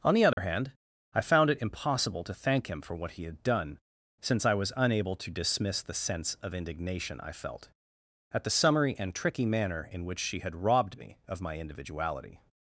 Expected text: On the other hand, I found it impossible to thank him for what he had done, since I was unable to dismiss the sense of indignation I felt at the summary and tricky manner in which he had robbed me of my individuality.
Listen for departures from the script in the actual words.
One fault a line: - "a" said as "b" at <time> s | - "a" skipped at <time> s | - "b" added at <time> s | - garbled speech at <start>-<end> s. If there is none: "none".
- "he" said as "she" at 10.2 s